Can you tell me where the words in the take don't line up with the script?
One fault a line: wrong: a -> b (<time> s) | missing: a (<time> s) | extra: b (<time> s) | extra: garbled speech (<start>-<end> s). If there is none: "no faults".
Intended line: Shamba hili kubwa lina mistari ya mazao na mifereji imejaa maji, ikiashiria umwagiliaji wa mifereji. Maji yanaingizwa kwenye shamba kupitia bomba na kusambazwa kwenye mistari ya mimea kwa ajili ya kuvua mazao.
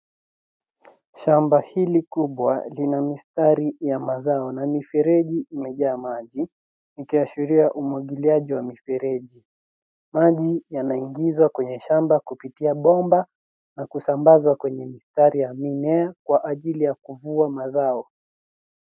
no faults